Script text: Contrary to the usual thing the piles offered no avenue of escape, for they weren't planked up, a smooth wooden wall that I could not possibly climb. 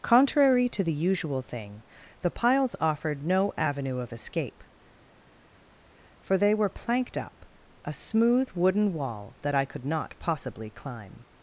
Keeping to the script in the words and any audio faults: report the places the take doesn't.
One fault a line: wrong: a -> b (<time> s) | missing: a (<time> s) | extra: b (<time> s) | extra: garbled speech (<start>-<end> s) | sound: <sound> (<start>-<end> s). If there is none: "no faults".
wrong: weren't -> were (6.5 s)